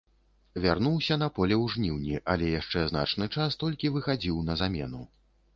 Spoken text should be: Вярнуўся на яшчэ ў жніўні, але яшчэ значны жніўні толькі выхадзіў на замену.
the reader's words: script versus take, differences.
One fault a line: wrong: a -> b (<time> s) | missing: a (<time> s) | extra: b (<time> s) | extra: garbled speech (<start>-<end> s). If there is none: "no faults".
wrong: яшчэ -> поле (1.4 s)
wrong: жніўні -> час (3.4 s)